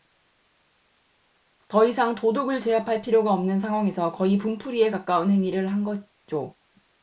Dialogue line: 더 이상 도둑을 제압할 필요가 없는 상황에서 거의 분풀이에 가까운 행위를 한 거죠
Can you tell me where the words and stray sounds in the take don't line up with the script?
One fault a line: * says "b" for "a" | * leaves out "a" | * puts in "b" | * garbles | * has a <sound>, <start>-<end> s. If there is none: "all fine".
all fine